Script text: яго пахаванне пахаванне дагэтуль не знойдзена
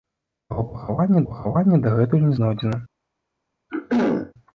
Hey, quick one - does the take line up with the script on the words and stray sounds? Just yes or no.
no